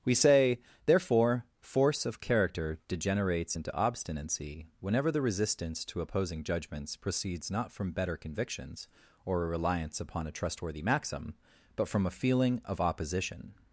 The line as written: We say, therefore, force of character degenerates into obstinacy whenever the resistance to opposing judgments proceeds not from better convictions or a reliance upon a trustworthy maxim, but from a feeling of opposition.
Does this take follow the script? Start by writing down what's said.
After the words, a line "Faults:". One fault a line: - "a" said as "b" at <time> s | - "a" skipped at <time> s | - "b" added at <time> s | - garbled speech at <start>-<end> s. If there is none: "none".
We say, therefore, force of character degenerates into obstinacy whenever the resistance to opposing judgments proceeds not from better convictions or a reliance upon a trustworthy maxim, but from a feeling of opposition.
Faults:
none